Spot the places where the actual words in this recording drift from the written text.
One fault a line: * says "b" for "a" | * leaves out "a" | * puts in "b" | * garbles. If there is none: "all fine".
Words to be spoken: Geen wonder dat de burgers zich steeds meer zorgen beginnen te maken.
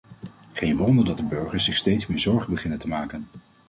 all fine